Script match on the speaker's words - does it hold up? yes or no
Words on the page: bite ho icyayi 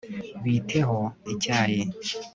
yes